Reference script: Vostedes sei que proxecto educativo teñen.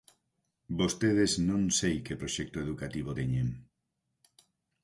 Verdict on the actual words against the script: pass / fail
fail